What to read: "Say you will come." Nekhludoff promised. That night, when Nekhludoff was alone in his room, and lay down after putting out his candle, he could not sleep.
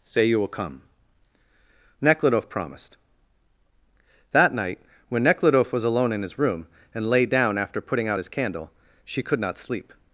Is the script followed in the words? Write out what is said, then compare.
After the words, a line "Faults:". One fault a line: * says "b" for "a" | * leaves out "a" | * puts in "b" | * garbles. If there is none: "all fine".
"Say you will come." Nekhludoff promised. That night, when Nekhludoff was alone in his room, and lay down after putting out his candle, she could not sleep.
Faults:
* says "she" for "he"